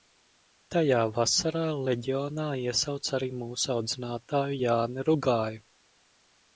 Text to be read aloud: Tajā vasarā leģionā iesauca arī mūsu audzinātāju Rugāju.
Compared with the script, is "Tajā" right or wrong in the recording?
right